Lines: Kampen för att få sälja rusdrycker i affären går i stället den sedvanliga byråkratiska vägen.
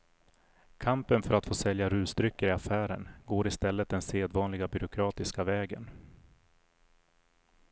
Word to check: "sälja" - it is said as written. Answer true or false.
true